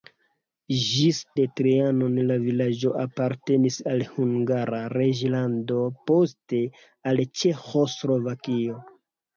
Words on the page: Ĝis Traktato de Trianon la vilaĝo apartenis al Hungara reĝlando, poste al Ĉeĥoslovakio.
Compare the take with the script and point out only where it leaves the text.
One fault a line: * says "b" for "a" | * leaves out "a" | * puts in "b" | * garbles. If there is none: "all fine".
* leaves out "Traktato"